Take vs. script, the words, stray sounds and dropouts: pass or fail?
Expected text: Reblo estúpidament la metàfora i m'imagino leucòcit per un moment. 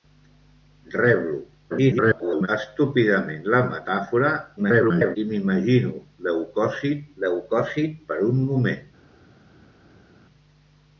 fail